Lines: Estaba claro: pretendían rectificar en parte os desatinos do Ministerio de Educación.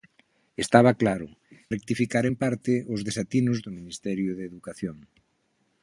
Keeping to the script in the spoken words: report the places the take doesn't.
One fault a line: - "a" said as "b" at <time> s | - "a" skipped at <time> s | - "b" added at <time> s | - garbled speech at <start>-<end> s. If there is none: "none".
- "pretendían" skipped at 1.3 s